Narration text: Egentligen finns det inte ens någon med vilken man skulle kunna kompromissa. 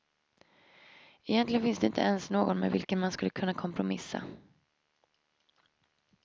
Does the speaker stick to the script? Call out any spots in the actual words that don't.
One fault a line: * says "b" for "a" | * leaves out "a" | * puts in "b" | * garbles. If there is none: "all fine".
all fine